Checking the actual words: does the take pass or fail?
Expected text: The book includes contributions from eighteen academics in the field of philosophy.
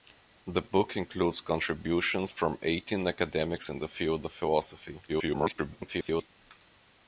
fail